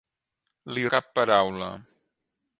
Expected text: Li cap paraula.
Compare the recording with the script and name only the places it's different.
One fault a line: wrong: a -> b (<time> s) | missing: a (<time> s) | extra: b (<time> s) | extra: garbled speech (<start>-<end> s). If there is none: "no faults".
no faults